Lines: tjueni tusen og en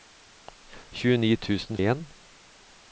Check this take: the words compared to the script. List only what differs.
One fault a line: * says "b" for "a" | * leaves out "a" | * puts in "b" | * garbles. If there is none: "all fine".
all fine